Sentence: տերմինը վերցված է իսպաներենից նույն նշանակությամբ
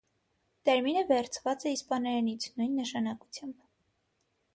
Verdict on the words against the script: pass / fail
pass